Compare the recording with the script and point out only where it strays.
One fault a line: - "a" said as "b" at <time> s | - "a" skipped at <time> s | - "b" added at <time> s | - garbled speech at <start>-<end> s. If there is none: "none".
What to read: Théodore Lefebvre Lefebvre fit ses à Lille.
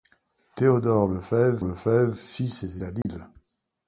none